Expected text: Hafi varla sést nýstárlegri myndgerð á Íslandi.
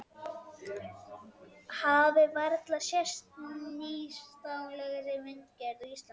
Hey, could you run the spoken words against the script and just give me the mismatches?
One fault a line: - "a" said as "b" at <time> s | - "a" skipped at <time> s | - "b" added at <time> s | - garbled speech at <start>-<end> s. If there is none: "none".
none